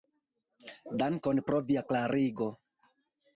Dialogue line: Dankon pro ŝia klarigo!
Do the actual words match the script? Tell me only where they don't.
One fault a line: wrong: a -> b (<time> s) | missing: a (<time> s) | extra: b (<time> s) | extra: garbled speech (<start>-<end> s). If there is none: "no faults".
wrong: ŝia -> via (1.7 s)